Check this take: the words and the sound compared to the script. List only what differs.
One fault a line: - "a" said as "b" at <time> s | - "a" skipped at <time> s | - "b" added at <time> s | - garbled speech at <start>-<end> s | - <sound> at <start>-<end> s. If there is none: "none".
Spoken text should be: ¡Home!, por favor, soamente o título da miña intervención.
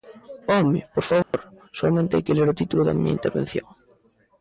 - dropout at 1.2-1.3 s
- "hai que ler" added at 2.1 s